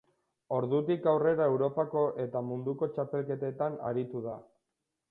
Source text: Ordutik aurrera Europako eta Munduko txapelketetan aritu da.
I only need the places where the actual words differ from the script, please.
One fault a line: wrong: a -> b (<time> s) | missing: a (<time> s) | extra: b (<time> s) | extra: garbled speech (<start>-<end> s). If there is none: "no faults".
no faults